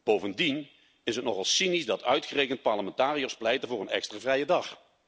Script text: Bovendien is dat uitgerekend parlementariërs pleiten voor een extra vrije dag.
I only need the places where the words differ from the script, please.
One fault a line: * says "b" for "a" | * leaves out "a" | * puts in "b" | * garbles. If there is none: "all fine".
* puts in "het nogal cynisch"